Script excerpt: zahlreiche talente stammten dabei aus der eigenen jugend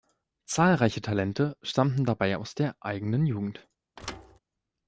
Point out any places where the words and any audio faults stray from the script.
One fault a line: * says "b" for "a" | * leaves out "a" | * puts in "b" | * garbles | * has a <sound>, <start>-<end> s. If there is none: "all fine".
* has a thud, 4.0-4.4 s